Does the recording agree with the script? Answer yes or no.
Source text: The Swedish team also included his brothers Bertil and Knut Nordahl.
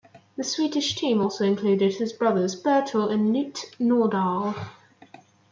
yes